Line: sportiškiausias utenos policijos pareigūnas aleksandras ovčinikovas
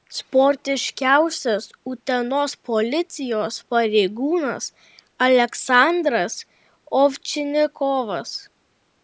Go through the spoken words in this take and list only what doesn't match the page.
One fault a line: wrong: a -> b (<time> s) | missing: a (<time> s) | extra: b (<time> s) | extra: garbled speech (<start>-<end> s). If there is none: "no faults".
no faults